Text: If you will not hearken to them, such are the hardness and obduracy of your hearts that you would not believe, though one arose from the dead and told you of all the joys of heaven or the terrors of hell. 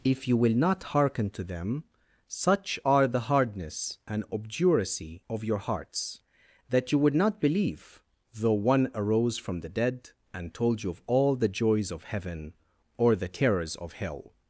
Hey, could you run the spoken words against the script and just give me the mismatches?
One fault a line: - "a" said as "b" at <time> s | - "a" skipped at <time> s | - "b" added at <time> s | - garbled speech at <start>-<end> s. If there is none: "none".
none